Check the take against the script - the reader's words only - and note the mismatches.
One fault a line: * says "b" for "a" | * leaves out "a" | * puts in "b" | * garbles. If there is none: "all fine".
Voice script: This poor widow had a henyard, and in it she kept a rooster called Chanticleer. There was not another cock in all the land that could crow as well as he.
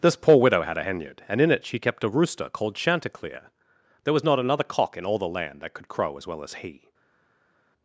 all fine